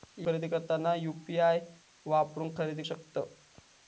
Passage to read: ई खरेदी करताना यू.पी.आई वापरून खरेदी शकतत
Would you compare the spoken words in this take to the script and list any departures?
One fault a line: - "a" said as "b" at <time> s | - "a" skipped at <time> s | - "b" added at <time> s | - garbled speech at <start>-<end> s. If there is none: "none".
none